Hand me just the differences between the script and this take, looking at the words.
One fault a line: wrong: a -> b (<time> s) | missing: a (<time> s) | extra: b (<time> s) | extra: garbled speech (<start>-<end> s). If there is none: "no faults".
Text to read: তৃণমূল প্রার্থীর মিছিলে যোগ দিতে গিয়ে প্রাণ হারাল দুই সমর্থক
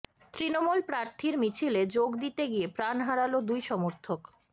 no faults